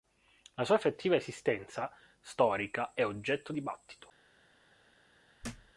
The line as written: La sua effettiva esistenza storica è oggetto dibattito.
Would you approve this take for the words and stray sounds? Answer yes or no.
no